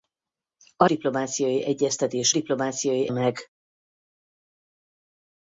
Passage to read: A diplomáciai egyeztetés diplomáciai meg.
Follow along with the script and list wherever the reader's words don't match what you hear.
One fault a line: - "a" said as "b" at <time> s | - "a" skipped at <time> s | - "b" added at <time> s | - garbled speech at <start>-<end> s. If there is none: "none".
none